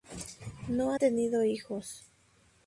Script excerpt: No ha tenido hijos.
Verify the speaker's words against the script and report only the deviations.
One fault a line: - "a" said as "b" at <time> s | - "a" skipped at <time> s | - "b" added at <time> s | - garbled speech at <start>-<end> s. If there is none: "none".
none